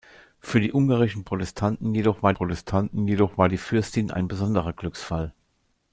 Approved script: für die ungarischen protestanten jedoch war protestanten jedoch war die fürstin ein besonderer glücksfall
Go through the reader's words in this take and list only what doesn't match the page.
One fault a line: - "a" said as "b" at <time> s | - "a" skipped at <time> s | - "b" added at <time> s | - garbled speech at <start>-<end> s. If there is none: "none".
none